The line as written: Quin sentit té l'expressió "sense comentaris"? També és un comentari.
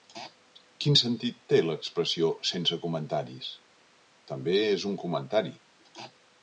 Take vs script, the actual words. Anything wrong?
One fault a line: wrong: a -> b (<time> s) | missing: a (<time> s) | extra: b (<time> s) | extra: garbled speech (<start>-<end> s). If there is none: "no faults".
no faults